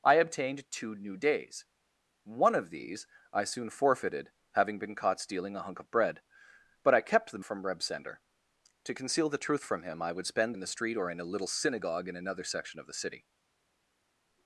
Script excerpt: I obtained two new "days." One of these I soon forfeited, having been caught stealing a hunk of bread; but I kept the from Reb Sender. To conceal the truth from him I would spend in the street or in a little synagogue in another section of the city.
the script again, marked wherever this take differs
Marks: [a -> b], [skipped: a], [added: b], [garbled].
I obtained two new "days." One of these I soon forfeited, having been caught stealing a hunk of bread; but I kept the from Reb Sender. To conceal the truth from him I would spend in the street or in a little synagogue in another section of the city.